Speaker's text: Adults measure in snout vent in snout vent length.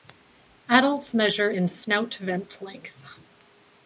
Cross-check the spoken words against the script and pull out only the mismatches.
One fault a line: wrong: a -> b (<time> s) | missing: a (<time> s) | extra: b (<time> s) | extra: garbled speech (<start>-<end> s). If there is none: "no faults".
missing: in snout vent (2.6 s)